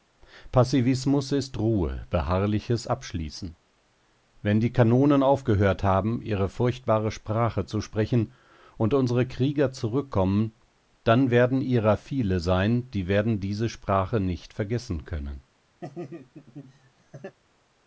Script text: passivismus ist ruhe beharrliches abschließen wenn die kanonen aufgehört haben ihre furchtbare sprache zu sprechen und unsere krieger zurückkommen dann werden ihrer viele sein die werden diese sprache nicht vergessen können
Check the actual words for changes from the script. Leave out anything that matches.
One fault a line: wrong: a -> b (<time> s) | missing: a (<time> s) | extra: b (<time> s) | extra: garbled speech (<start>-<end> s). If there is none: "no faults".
no faults